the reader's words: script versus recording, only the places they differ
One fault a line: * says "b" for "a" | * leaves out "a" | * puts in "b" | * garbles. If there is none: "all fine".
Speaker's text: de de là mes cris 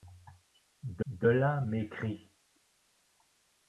all fine